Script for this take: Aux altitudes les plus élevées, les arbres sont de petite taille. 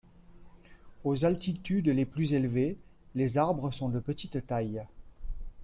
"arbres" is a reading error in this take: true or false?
false